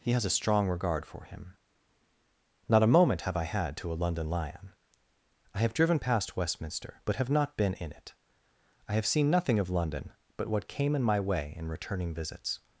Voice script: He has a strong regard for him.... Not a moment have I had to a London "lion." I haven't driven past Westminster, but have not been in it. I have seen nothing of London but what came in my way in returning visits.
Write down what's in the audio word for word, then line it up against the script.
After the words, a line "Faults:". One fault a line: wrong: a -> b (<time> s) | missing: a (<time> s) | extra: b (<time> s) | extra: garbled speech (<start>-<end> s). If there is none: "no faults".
He has a strong regard for him.... Not a moment have I had to a London "lion." I have driven past Westminster, but have not been in it. I have seen nothing of London but what came in my way in returning visits.
Faults:
wrong: haven't -> have (5.6 s)